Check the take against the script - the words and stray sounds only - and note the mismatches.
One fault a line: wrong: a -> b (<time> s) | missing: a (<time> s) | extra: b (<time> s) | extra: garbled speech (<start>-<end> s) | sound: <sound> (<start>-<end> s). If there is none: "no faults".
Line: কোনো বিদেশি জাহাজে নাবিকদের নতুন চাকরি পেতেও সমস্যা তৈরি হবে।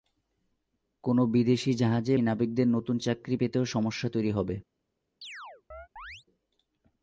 sound: chirp (5.2-6.2 s)